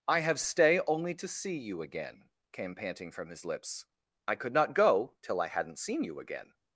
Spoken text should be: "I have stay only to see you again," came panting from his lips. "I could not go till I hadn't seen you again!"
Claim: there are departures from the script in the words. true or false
false